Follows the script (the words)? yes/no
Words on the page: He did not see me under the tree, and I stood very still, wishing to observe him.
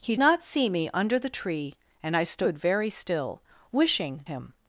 no